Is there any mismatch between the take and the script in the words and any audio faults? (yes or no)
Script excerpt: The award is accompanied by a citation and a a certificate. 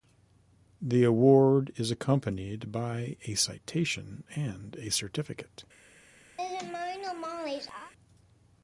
yes